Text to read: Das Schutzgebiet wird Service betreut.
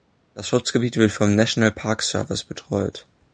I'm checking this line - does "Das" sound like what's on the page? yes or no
yes